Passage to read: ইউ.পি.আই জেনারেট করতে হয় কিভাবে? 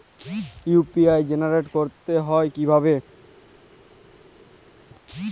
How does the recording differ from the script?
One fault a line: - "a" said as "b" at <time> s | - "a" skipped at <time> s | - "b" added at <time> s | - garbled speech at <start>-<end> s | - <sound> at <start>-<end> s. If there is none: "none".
none